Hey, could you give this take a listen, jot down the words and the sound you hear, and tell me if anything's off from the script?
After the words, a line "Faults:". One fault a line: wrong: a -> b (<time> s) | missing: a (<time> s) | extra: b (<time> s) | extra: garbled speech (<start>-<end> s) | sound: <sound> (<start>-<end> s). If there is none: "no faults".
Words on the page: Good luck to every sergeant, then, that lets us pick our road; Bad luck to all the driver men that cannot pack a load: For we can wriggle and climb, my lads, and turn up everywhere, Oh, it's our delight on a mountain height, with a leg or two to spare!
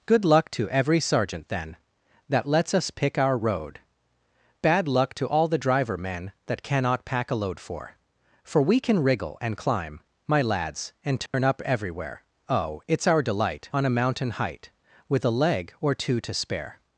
Good luck to every sergeant, then, that lets us pick our road; Bad luck to all the driver men that cannot pack a load: For For we can wriggle and climb, my lads, and turn up everywhere, Oh, it's our delight on a mountain height, with a leg or two to spare!
Faults:
extra: For (8.4 s)
sound: dropout (11.3-11.3 s)